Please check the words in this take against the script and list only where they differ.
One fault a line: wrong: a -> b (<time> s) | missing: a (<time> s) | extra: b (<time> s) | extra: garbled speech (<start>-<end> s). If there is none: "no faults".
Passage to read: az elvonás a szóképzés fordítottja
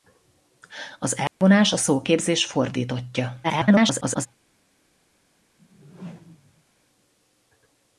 extra: garbled speech (3.4-4.3 s)